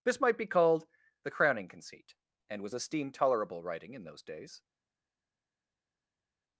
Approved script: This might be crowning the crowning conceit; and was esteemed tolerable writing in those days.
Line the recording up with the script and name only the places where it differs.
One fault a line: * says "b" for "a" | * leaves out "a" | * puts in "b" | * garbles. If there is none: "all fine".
* says "called" for "crowning"